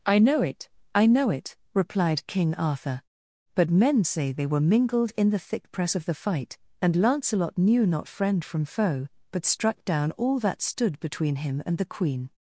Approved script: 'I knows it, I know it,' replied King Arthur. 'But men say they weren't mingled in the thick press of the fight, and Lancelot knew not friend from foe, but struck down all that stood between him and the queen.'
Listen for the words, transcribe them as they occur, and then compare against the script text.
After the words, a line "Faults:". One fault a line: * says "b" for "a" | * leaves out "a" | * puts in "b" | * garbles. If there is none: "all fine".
'I know it, I know it,' replied King Arthur. 'But men say they were mingled in the thick press of the fight, and Lancelot knew not friend from foe, but struck down all that stood between him and the queen.'
Faults:
* says "know" for "knows"
* says "were" for "weren't"